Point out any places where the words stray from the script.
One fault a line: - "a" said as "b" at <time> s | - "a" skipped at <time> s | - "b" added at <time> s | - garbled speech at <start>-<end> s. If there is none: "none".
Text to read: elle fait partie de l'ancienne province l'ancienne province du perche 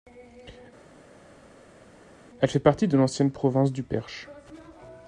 - "l'ancienne province" skipped at 3.7 s